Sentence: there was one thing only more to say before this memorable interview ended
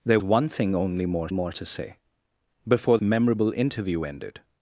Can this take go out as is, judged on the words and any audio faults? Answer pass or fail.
fail